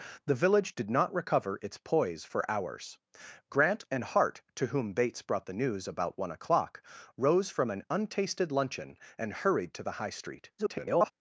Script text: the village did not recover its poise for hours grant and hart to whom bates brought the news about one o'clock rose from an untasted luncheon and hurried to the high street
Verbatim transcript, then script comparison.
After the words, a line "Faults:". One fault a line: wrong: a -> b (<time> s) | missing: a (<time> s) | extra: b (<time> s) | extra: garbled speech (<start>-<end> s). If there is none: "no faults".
the village did not recover its poise for hours grant and hart to whom bates brought the news about one o'clock rose from an untasted luncheon and hurried to the high street [garbled]
Faults:
extra: garbled speech (10.6-11.1 s)